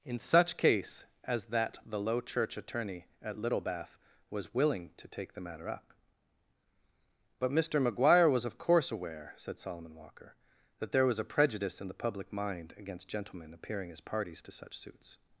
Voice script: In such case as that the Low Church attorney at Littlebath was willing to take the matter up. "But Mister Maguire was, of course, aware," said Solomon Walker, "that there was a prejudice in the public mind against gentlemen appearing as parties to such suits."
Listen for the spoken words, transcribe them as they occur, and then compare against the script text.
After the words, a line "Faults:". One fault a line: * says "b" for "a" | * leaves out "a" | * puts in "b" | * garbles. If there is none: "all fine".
In such case as that the Low Church attorney at Littlebath was willing to take the matter up. "But Mister Maguire was, of course, aware," said Solomon Walker, "that there was a prejudice in the public mind against gentlemen appearing as parties to such suits."
Faults:
all fine